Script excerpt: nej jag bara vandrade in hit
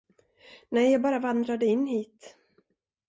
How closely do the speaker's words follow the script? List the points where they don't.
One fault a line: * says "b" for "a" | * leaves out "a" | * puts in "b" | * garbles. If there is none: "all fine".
all fine